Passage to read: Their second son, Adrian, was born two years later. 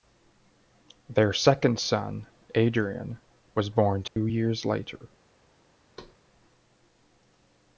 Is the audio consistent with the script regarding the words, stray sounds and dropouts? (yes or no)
no